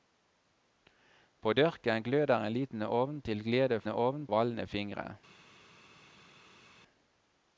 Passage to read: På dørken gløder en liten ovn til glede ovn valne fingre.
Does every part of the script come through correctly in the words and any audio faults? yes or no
yes